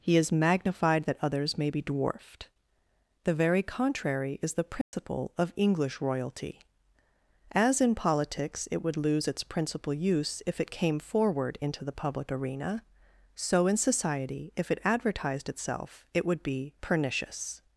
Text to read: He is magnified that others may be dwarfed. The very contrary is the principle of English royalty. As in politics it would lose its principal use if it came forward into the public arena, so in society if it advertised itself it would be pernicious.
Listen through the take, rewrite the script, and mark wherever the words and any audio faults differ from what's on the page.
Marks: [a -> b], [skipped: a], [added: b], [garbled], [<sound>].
He is magnified that others may be dwarfed. The very contrary is the principle [dropout] of English royalty. As in politics it would lose its principal use if it came forward into the public arena, so in society if it advertised itself it would be pernicious.